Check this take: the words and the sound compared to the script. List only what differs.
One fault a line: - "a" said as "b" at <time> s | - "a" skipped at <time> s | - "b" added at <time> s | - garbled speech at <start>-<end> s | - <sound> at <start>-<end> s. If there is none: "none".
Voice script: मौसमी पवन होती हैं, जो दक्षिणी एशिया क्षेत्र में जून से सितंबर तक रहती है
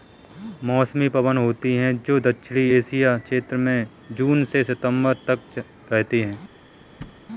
- thud at 7.0-7.2 s